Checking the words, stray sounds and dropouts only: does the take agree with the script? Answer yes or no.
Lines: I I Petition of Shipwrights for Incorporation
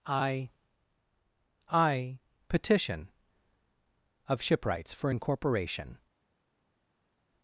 yes